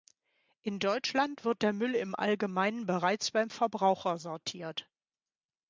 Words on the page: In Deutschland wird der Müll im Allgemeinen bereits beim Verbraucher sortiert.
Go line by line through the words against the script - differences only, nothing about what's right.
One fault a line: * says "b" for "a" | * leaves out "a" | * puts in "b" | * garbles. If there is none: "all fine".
all fine